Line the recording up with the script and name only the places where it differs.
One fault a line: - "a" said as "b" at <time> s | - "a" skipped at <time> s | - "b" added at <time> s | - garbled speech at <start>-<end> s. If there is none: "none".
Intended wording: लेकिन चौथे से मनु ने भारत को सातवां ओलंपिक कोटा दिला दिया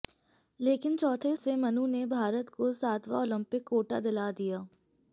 none